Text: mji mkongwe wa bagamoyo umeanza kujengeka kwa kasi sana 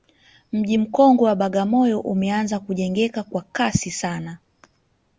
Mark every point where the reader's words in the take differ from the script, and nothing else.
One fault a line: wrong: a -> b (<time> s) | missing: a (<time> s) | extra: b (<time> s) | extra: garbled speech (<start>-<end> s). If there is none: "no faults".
no faults